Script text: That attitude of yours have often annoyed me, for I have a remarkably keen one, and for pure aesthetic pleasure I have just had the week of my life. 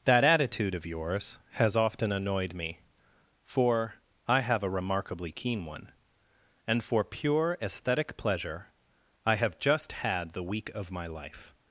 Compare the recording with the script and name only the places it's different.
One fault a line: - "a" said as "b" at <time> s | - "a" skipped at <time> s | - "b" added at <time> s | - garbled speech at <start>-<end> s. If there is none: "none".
- "have" said as "has" at 1.5 s